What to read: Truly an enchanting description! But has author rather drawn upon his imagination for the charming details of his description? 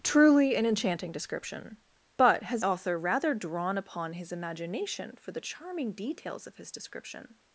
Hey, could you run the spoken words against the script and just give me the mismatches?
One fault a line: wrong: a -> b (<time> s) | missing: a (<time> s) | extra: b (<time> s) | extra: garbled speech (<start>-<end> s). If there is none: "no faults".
no faults